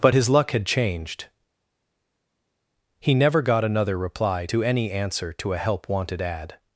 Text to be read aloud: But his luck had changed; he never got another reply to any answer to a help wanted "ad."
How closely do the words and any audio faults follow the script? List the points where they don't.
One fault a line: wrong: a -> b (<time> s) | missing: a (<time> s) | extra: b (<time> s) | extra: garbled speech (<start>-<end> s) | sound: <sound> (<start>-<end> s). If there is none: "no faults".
no faults